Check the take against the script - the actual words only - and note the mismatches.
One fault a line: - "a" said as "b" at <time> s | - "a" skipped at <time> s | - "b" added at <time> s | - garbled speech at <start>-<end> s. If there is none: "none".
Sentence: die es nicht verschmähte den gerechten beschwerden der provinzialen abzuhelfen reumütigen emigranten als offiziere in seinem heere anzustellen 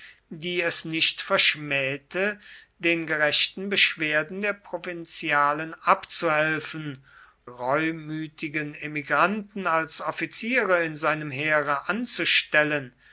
none